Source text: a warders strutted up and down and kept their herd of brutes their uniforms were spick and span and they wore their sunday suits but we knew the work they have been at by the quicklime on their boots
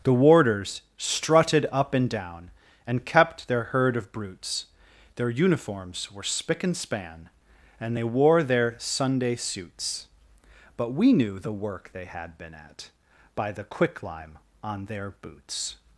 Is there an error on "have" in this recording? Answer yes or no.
yes